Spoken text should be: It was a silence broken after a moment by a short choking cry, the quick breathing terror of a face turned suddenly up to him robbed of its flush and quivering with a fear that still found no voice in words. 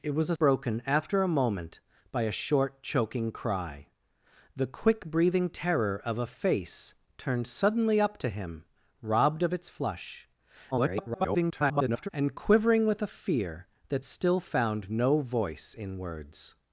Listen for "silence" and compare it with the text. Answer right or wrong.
wrong